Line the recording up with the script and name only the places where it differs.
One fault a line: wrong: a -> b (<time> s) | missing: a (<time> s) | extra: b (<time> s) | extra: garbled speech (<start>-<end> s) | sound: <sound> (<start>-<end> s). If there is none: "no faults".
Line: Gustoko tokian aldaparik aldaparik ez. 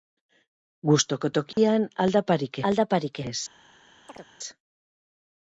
sound: dropout (1.5-1.6 s)
sound: chirp (4.1-4.3 s)